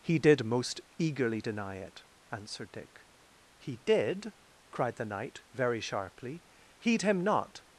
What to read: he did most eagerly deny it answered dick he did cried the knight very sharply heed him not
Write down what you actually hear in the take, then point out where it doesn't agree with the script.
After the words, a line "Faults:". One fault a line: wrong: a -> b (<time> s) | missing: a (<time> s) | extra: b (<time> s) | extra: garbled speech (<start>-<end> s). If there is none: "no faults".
he did most eagerly deny it answered dick he did cried the knight very sharply heed him not
Faults:
no faults